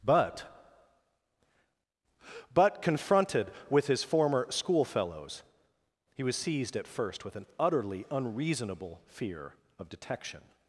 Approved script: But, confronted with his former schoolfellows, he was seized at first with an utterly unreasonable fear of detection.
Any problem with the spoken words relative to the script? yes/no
yes